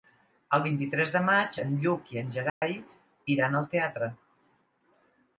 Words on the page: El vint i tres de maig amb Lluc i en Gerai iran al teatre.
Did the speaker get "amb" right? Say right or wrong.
wrong